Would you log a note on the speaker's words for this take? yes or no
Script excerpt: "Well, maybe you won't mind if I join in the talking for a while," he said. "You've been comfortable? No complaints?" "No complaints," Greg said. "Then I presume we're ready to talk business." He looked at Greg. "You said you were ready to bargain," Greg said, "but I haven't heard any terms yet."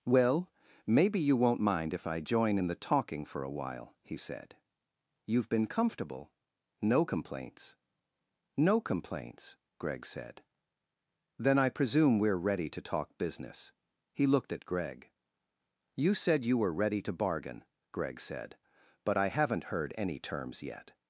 no